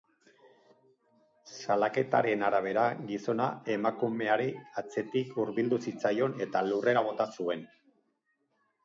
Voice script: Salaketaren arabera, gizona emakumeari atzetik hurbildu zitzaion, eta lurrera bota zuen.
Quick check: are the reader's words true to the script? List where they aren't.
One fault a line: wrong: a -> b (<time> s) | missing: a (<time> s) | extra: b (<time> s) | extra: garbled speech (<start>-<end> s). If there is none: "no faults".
no faults